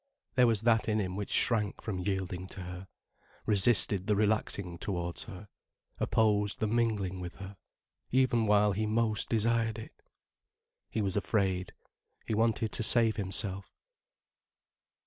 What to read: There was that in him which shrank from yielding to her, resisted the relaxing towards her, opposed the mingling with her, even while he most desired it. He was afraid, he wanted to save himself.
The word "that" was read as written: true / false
true